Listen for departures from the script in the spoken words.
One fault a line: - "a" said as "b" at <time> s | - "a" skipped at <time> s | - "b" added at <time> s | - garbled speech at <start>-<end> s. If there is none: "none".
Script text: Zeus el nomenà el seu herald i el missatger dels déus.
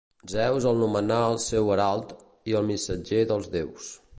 none